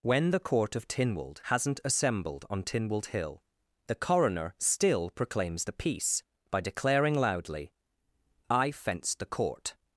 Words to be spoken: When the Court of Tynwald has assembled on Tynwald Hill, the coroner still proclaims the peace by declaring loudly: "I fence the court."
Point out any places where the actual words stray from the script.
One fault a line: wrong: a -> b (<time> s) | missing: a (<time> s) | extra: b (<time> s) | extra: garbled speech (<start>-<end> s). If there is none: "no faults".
wrong: has -> hasn't (1.4 s)